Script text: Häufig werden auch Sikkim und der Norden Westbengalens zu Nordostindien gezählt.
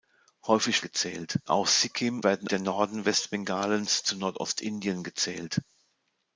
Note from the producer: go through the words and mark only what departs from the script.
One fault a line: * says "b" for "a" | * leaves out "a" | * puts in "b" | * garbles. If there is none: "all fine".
* says "gezählt" for "werden"
* says "werden" for "und"